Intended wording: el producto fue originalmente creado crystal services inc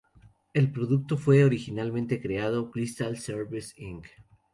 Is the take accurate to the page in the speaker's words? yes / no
yes